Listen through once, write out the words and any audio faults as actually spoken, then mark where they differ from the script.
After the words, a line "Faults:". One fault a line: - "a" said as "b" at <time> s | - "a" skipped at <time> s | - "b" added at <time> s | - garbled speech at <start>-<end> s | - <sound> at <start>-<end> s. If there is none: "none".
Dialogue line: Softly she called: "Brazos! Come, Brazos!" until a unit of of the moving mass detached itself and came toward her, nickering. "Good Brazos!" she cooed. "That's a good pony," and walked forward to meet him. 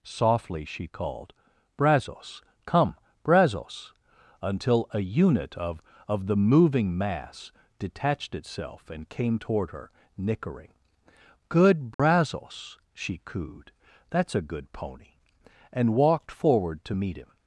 Softly she called: "Brazos! Come, Brazos!" until a unit of of the moving mass detached itself and came toward her, nickering. "Good Brazos!" she cooed. "That's a good pony," and walked forward to meet him.
Faults:
- dropout at 11.9-12.0 s